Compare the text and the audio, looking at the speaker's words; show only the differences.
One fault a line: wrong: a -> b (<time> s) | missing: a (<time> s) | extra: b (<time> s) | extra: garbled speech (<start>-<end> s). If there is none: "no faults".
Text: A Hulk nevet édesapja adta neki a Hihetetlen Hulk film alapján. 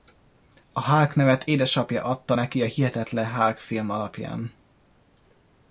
no faults